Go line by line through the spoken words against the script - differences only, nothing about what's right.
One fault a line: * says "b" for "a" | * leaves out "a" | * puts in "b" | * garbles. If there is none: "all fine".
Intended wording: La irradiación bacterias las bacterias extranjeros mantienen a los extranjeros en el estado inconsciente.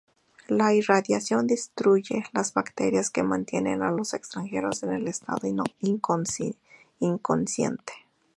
* says "destruye" for "bacterias"
* says "que" for "extranjeros"